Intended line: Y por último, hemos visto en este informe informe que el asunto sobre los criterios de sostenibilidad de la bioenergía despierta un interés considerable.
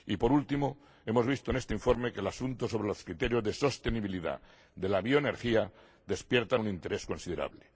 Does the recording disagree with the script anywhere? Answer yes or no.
yes